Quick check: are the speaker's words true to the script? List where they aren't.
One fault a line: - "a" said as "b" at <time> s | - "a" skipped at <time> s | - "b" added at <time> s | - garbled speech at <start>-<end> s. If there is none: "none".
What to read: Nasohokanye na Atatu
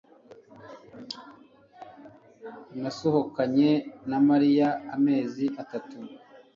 - "Mariya amezi" added at 4.3 s